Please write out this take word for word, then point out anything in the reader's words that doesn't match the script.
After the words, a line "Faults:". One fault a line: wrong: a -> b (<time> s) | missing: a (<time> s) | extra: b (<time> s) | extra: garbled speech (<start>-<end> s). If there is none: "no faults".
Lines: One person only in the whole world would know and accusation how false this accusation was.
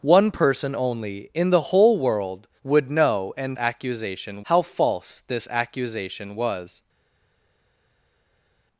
One person only in the whole world would know and accusation how false this accusation was.
Faults:
no faults